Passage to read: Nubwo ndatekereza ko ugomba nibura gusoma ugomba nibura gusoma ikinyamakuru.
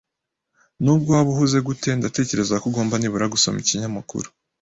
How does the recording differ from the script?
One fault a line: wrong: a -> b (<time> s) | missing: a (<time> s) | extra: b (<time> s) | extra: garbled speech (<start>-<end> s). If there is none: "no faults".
wrong: ndatekereza ko ugomba nibura gusoma -> waba uhuze gute ndatekereza ko (1.2 s)